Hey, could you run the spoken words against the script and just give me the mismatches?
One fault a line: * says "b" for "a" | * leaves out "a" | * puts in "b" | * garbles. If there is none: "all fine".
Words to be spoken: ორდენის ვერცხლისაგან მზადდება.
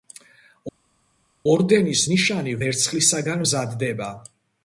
* puts in "ნიშანი"